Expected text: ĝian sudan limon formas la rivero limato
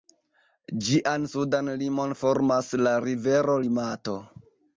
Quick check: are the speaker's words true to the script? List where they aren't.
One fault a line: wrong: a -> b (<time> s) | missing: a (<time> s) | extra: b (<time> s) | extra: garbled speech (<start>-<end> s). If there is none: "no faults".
no faults